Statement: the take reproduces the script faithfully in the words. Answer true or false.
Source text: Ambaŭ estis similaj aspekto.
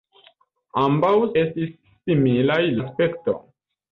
true